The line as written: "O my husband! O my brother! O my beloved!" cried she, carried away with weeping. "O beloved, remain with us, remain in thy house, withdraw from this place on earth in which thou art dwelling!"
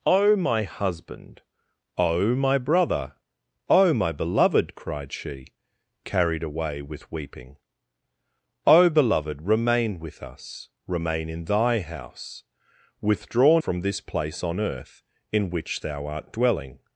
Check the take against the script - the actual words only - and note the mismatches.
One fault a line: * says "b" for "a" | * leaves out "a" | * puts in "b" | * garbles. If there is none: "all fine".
all fine